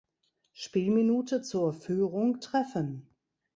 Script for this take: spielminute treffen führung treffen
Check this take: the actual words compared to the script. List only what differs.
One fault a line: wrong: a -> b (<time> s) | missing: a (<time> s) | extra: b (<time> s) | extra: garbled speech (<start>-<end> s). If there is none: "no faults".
wrong: treffen -> zur (1.4 s)